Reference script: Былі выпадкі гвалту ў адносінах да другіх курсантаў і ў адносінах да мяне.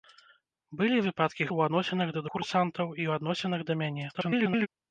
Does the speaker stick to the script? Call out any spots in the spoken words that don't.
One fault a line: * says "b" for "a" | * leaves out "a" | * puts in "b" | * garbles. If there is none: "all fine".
* leaves out "гвалту"
* leaves out "другіх"
* garbles